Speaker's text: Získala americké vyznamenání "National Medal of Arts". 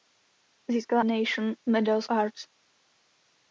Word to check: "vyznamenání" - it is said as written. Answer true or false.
false